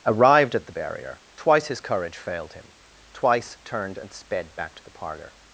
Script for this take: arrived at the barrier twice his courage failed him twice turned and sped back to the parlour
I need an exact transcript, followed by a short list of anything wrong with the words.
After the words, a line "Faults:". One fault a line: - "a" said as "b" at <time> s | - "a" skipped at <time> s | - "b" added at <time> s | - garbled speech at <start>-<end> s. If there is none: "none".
arrived at the barrier twice his courage failed him twice turned and sped back to the parlour
Faults:
none